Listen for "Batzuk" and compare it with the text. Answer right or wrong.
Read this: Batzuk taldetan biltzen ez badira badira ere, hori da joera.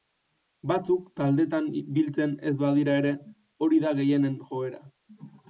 right